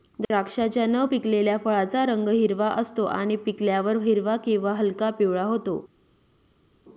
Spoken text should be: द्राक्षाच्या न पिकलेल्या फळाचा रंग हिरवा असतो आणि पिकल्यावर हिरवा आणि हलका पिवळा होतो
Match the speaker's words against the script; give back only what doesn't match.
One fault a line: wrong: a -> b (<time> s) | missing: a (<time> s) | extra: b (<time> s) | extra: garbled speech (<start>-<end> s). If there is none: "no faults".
wrong: आणि -> किंवा (4.4 s)